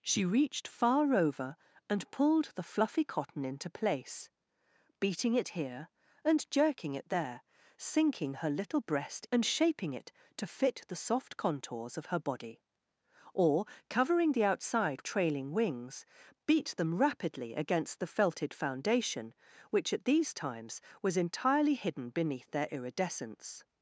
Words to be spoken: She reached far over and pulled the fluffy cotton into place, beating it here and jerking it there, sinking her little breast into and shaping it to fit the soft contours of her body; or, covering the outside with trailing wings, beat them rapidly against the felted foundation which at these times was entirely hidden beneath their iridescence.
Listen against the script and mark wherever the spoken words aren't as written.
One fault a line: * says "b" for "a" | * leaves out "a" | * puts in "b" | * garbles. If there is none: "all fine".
* leaves out "into"
* leaves out "with"